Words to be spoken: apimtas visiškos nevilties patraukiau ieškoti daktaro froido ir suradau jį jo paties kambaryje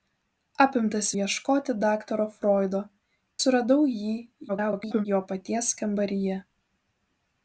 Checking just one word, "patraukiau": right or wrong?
wrong